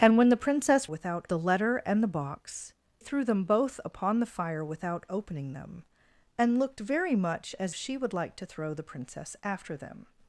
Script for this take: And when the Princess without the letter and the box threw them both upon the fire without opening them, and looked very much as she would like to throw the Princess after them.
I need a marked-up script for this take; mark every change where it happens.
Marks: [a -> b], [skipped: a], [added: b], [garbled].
And when the Princess without the letter and the box threw them both upon the fire without opening them, and looked very much as she would like to throw the Princess after them.